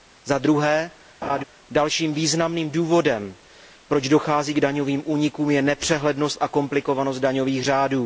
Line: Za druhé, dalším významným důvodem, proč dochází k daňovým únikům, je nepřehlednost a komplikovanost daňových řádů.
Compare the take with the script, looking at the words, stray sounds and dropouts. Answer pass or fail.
fail